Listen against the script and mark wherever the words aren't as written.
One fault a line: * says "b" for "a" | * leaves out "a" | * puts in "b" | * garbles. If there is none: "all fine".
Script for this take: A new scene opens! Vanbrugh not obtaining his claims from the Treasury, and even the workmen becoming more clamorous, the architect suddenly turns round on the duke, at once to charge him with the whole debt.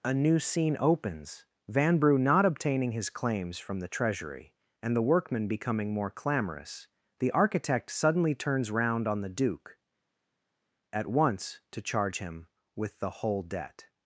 * leaves out "even"